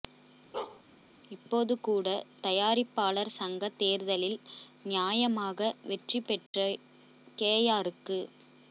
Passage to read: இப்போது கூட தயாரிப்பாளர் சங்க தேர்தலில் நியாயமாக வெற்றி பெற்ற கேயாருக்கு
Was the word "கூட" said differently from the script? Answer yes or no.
no